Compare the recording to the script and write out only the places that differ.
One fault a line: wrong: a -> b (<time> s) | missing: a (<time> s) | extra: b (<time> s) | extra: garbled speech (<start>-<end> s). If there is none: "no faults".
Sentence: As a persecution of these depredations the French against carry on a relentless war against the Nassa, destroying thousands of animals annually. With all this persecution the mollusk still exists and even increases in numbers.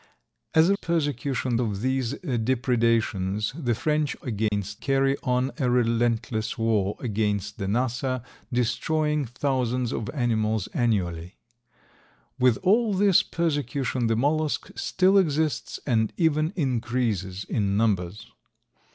no faults